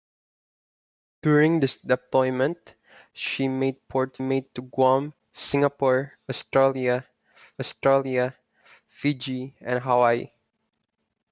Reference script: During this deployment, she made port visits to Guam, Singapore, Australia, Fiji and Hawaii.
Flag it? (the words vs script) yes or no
yes